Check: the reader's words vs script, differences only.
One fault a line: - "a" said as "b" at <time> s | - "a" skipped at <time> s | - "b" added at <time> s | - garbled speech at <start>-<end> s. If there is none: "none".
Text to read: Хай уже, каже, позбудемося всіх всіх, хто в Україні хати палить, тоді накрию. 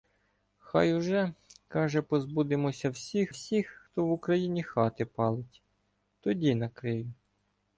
none